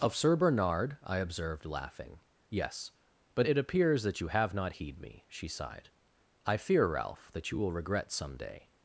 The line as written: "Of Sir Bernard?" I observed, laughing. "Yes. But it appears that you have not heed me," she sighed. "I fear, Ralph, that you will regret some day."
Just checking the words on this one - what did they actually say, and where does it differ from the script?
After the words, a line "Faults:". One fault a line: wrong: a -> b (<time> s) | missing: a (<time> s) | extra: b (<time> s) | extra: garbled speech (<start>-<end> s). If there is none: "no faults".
"Of Sir Bernard?" I observed, laughing. "Yes. But it appears that you have not heed me," she sighed. "I fear, Ralph, that you will regret some day."
Faults:
no faults